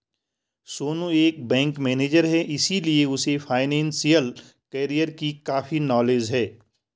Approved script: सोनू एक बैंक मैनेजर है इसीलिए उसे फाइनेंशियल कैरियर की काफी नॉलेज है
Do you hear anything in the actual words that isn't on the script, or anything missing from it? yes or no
no